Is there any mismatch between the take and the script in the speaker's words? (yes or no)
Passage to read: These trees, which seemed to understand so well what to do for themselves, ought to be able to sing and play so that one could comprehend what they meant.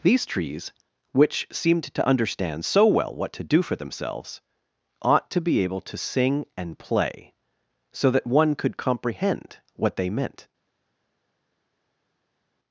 no